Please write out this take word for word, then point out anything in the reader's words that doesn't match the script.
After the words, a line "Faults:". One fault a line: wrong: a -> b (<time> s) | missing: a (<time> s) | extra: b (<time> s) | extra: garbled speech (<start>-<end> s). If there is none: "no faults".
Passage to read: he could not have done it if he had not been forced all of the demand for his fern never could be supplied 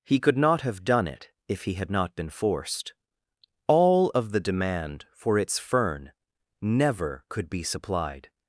he could not have done it if he had not been forced all of the demand for its fern never could be supplied
Faults:
wrong: his -> its (5.4 s)